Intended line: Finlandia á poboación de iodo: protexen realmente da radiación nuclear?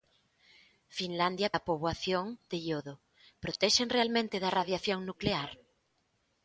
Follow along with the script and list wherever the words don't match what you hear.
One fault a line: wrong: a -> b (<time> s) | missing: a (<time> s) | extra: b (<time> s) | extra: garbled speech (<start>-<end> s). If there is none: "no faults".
no faults